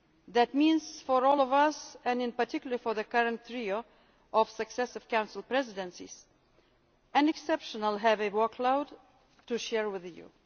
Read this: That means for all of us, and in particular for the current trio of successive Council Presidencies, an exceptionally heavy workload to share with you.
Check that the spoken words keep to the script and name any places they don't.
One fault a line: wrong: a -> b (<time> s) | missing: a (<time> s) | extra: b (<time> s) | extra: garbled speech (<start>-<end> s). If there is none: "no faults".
no faults